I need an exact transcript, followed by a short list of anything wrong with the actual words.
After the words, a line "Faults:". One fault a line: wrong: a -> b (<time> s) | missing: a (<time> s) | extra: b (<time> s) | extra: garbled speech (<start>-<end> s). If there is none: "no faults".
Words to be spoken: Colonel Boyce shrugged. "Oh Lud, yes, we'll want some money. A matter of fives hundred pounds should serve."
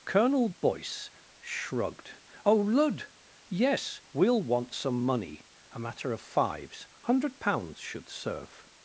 Colonel Boyce shrugged. "Oh Lud, yes, we'll want some money. A matter of fives hundred pounds should serve."
Faults:
no faults